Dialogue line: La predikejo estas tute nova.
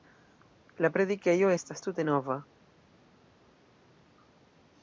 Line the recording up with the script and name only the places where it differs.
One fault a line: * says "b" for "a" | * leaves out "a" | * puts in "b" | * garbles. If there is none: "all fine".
all fine